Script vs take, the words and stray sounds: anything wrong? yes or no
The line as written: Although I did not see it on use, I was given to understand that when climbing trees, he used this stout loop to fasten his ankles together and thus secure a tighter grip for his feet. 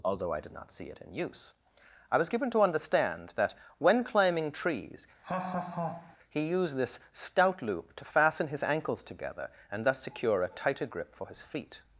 yes